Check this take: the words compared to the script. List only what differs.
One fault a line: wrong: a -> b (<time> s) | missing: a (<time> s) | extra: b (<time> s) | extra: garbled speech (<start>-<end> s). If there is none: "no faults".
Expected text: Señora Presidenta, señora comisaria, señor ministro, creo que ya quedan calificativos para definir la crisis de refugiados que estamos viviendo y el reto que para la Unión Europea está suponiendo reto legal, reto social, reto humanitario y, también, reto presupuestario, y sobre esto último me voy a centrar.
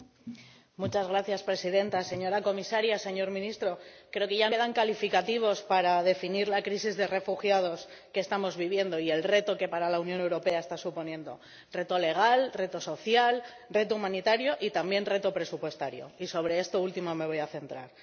no faults